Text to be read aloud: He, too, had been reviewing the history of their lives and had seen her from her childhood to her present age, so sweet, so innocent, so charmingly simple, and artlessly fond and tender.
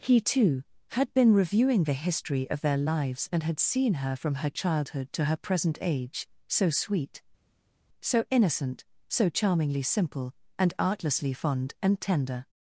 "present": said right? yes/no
yes